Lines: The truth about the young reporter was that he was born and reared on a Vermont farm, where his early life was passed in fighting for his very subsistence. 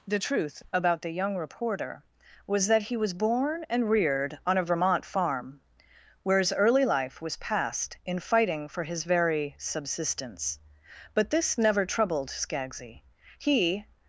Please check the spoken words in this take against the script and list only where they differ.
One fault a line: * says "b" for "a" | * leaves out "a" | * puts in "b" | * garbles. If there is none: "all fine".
* puts in "But this never troubled Skaggsy He"